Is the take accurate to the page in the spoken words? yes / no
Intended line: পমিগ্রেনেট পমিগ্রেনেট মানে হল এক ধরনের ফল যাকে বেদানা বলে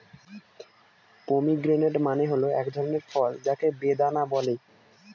no